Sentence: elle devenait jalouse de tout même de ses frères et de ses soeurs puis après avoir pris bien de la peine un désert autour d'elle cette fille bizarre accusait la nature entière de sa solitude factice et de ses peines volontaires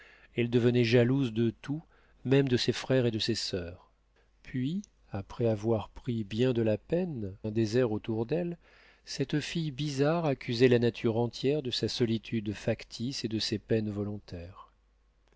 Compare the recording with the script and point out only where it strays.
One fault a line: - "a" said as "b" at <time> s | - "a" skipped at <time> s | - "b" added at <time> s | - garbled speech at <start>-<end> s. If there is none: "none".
none